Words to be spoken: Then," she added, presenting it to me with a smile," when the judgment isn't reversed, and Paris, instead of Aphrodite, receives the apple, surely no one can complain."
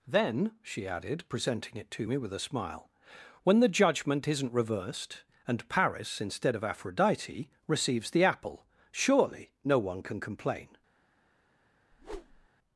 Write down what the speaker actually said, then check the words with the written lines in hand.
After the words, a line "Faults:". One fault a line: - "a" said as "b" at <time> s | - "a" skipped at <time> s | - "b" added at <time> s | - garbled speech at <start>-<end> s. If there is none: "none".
Then," she added, presenting it to me with a smile," when the judgment isn't reversed, and Paris, instead of Aphrodite, receives the apple, surely no one can complain."
Faults:
none